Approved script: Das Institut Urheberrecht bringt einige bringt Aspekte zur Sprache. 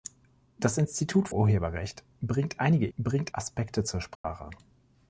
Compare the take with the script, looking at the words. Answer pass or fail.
pass